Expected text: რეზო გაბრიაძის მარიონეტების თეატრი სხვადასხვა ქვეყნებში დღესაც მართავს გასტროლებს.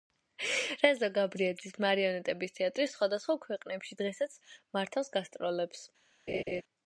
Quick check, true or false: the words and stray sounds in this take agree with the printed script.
false